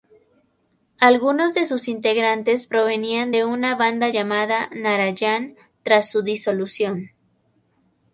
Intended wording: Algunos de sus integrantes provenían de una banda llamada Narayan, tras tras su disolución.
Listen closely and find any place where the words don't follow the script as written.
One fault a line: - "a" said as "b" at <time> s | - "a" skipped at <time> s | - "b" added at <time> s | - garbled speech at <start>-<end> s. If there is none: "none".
- "tras" skipped at 6.1 s